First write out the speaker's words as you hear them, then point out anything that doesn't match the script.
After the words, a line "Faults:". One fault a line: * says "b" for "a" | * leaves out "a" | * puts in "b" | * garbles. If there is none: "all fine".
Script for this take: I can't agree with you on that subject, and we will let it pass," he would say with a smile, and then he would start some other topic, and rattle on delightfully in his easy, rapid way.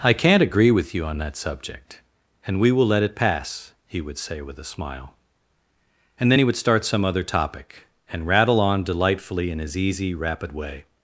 I can't agree with you on that subject, and we will let it pass," he would say with a smile, and then he would start some other topic, and rattle on delightfully in his easy, rapid way.
Faults:
all fine